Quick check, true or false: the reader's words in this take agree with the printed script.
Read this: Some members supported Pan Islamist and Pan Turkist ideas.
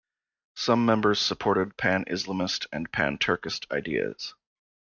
true